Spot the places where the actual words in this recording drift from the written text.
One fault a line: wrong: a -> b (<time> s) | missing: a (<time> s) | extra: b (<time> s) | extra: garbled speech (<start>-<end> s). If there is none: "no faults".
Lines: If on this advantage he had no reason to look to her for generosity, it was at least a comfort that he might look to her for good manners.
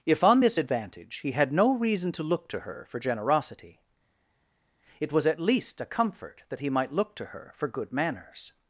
no faults